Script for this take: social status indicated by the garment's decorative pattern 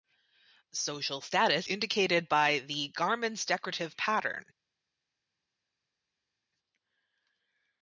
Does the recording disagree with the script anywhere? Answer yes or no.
no